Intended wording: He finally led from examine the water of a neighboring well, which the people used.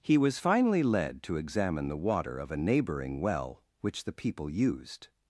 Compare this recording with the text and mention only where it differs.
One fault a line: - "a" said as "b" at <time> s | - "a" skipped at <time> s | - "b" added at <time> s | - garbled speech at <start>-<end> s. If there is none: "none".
- "was" added at 0.2 s
- "from" said as "to" at 1.2 s